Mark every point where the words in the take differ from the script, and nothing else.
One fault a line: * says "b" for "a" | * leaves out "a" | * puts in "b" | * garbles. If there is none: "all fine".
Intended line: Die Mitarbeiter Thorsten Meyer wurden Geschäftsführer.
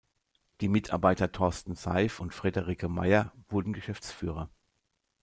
* puts in "Seif und Friederike"